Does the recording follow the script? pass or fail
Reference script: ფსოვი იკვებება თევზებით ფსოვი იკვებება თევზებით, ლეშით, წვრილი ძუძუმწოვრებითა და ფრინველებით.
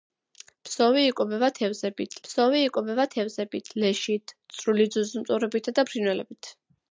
pass